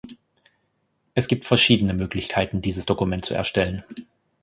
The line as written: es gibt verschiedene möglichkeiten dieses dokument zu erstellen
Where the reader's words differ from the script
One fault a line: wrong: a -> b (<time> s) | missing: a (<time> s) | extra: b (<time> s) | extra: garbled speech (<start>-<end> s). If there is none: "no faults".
no faults